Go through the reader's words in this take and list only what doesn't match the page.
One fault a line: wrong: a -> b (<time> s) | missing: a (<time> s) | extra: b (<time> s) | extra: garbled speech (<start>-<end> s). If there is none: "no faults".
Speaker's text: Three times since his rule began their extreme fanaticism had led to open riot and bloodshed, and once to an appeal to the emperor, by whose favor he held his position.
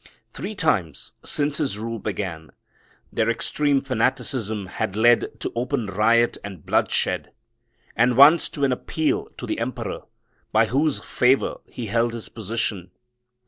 no faults